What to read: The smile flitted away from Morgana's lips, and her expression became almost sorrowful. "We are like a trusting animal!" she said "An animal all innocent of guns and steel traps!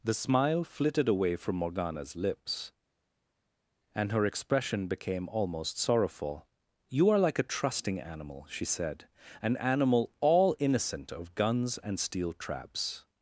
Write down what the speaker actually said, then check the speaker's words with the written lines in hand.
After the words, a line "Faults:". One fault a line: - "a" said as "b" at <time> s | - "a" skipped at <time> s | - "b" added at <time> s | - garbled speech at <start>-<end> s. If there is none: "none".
The smile flitted away from Morgana's lips, and her expression became almost sorrowful. "You are like a trusting animal!" she said "An animal all innocent of guns and steel traps!
Faults:
- "We" said as "You" at 6.9 s